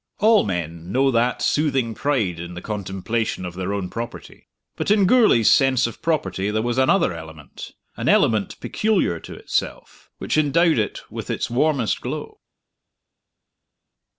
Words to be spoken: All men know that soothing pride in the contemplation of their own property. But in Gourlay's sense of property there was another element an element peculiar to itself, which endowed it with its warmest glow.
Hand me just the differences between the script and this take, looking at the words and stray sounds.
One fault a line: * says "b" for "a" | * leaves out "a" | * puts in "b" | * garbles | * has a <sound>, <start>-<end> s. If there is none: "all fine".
all fine